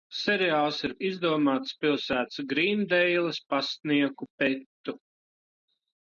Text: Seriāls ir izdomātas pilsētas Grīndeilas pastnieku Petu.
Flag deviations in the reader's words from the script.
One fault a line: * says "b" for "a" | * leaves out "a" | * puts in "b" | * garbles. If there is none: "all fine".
all fine